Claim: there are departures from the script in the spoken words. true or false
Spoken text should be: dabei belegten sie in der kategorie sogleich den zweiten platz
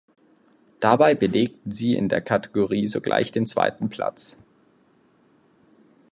false